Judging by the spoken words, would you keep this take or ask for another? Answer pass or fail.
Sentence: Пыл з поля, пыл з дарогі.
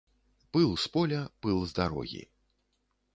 pass